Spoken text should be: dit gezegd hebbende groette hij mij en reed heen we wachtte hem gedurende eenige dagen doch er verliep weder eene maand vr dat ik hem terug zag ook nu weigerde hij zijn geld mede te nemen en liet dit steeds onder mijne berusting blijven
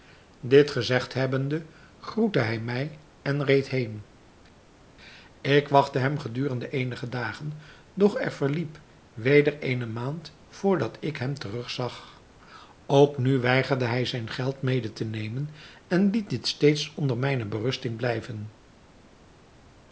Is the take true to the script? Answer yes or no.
no